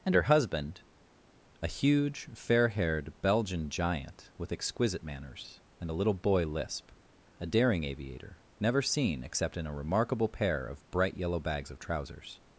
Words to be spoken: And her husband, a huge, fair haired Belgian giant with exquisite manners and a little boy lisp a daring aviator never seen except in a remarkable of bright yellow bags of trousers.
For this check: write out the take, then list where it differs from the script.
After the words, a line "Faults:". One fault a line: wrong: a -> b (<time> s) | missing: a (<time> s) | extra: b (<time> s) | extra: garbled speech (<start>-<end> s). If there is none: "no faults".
And her husband, a huge, fair haired Belgian giant with exquisite manners and a little boy lisp a daring aviator never seen except in a remarkable pair of bright yellow bags of trousers.
Faults:
extra: pair (10.3 s)